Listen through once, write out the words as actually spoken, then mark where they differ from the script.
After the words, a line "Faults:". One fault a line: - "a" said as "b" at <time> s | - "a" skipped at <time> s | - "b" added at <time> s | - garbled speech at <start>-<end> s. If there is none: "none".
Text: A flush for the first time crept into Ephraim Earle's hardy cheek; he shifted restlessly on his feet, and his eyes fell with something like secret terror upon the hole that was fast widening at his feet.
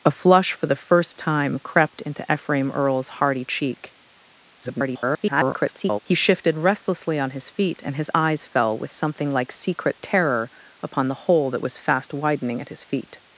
A flush for the first time crept into Ephraim Earle's hardy cheek; [garbled] he shifted restlessly on his feet, and his eyes fell with something like secret terror upon the hole that was fast widening at his feet.
Faults:
- garbled speech at 4.6-6.0 s